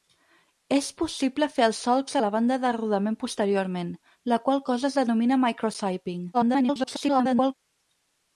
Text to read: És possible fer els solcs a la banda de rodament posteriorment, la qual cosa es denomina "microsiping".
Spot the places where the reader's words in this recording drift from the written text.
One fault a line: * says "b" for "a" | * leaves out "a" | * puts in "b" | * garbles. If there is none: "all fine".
* garbles